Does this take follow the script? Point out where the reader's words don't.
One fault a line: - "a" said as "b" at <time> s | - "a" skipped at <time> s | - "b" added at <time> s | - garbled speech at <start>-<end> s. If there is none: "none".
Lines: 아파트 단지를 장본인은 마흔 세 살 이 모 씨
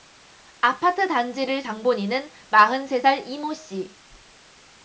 none